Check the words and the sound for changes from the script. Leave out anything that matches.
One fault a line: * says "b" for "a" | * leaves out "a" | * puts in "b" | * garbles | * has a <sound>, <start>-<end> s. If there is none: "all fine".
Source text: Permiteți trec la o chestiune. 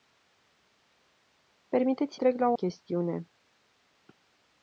all fine